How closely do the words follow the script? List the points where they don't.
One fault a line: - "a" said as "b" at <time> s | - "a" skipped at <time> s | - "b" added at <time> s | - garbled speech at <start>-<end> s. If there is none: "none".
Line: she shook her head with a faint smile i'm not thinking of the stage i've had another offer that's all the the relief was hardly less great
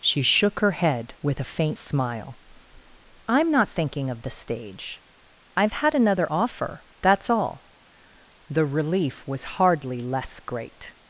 - "the" skipped at 8.7 s